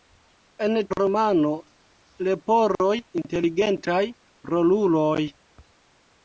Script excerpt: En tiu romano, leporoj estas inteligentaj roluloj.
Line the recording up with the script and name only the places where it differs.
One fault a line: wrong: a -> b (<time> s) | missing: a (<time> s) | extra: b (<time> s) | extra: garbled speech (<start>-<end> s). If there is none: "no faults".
missing: tiu (0.8 s)
missing: estas (2.9 s)